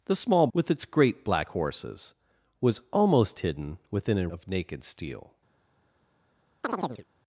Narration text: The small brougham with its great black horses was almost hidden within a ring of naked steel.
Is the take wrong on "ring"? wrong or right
wrong